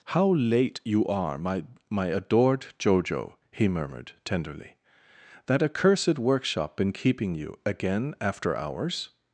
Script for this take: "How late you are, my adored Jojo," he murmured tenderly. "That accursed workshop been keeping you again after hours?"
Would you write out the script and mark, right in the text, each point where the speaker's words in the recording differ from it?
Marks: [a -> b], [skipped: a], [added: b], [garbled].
"How late you are, my [added: my] adored Jojo," he murmured tenderly. "That accursed workshop been keeping you again after hours?"